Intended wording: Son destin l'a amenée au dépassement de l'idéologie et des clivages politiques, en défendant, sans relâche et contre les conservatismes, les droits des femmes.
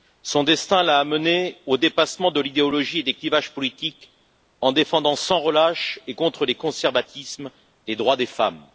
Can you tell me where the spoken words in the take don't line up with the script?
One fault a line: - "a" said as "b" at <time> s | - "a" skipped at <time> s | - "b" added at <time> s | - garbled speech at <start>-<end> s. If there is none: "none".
none